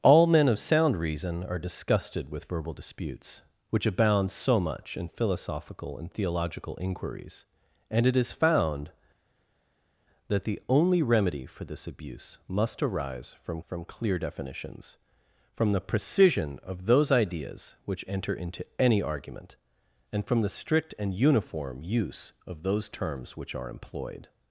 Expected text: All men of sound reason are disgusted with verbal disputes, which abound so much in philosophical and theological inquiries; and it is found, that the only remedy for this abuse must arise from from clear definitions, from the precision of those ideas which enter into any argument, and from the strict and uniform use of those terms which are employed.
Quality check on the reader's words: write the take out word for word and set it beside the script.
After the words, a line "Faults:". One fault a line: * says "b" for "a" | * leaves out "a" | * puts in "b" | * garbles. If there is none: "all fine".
All men of sound reason are disgusted with verbal disputes, which abound so much in philosophical and theological inquiries; and it is found, that the only remedy for this abuse must arise from from clear definitions, from the precision of those ideas which enter into any argument, and from the strict and uniform use of those terms which are employed.
Faults:
all fine